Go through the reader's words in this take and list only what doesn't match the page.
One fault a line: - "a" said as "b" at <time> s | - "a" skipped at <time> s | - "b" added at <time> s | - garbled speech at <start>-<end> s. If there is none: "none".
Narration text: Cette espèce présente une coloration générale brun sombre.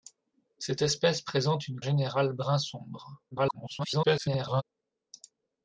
- "coloration" skipped at 1.8 s
- garbled speech at 3.3-4.6 s